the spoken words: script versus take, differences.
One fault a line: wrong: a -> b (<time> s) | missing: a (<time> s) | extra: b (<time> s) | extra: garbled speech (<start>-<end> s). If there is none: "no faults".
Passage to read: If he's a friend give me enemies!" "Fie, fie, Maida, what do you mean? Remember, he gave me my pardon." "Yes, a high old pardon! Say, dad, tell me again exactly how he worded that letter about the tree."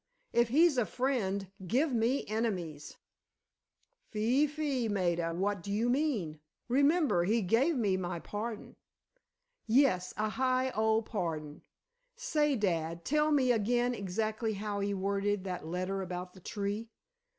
no faults